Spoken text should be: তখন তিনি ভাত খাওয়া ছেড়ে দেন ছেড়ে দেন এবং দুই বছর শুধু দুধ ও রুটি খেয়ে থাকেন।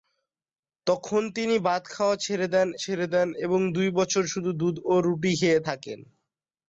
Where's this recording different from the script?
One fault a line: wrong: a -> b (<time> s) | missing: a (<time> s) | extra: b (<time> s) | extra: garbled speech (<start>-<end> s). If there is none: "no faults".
no faults